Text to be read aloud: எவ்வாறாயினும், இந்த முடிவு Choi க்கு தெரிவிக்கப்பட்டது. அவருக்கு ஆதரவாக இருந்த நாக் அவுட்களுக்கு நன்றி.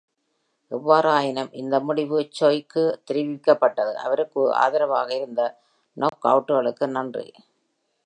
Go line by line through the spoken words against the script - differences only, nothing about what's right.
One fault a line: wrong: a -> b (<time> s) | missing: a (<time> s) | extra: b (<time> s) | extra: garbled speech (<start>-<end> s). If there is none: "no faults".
no faults